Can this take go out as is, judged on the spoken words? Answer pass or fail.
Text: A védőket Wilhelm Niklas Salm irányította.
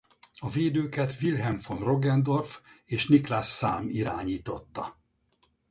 fail